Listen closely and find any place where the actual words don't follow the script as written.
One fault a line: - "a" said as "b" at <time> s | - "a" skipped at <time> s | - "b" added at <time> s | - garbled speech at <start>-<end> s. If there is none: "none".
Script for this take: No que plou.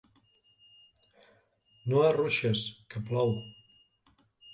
- "arruixes" added at 2.0 s